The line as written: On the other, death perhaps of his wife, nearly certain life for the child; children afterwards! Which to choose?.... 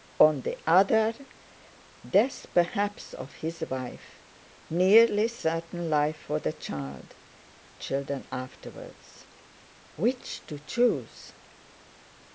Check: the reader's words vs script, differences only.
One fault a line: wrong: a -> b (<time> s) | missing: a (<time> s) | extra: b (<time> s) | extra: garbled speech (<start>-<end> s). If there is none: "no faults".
no faults